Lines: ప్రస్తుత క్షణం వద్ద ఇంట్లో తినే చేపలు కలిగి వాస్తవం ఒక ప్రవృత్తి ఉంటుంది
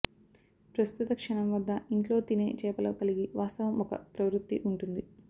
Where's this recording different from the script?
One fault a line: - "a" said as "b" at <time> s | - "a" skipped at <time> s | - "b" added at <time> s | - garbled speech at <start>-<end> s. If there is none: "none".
none